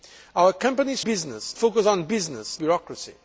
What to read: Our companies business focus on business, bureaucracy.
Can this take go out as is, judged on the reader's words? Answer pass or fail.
pass